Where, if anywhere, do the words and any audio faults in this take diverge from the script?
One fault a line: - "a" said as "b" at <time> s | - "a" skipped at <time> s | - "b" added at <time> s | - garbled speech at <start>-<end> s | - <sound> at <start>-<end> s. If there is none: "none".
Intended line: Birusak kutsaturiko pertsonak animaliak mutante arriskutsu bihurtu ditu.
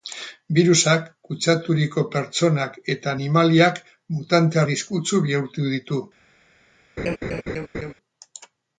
- "eta" added at 3.0 s
- laugh at 7.0-7.9 s